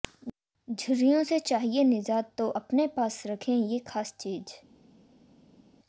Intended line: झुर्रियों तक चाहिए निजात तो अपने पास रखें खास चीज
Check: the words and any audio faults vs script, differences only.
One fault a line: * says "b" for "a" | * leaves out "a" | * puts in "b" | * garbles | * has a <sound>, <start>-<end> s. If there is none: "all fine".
* says "से" for "तक"
* puts in "ये"